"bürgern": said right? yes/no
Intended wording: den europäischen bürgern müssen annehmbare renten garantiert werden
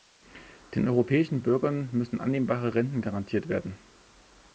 yes